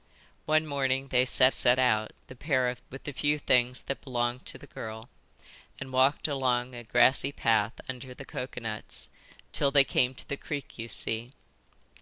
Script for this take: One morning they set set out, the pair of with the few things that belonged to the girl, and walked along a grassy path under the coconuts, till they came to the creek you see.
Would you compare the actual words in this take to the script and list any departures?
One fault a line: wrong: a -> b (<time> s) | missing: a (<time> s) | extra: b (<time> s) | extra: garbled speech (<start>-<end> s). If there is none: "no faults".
no faults